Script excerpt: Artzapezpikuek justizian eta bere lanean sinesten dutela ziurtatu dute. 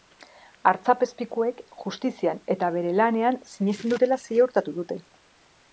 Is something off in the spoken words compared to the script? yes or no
no